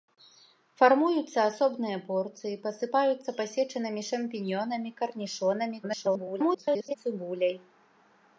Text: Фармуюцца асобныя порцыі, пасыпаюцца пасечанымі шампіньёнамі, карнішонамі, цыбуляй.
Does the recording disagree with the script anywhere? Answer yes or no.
yes